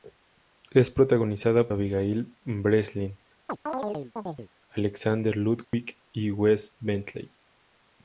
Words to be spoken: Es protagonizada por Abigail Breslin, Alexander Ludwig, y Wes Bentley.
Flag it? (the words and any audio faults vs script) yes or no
yes